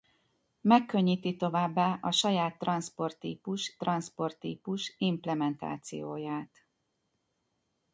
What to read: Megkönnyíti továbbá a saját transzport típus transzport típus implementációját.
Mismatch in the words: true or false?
false